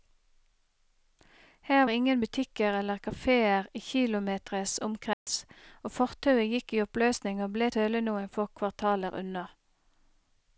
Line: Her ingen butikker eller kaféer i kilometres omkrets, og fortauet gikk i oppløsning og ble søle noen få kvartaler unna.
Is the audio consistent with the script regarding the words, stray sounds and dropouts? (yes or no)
no